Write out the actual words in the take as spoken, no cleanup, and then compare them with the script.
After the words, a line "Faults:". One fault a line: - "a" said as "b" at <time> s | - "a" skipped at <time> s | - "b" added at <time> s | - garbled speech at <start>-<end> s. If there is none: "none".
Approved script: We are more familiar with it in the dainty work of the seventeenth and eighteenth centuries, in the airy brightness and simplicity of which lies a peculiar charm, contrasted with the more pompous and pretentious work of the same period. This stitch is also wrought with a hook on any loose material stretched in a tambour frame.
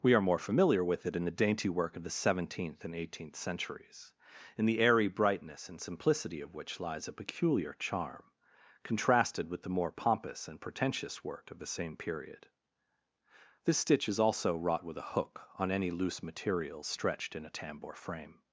We are more familiar with it in the dainty work of the seventeenth and eighteenth centuries, in the airy brightness and simplicity of which lies a peculiar charm, contrasted with the more pompous and pretentious work of the same period. This stitch is also wrought with a hook on any loose material stretched in a tambour frame.
Faults:
none